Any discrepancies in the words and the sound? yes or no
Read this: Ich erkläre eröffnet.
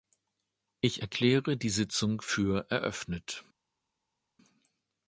yes